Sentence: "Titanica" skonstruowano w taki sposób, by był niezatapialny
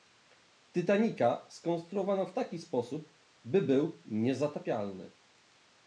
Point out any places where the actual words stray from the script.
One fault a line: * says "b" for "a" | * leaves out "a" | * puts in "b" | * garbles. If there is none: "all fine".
all fine